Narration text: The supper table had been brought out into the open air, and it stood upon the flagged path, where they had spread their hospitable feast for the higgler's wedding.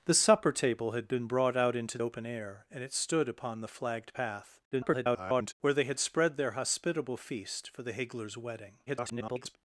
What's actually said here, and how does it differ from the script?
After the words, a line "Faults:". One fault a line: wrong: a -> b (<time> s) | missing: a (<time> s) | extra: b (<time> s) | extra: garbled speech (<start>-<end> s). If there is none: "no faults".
The supper table had been brought out into open air, and it stood upon the flagged path, [garbled] where they had spread their hospitable feast for the higgler's wedding. [garbled]
Faults:
missing: the (2.0 s)
extra: garbled speech (4.7-5.5 s)
extra: garbled speech (8.9-9.6 s)